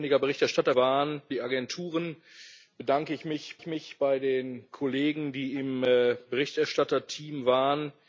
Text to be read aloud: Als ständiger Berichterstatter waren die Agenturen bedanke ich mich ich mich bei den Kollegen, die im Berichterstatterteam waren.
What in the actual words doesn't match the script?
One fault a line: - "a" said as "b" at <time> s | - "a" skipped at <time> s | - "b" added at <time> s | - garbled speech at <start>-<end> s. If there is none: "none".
none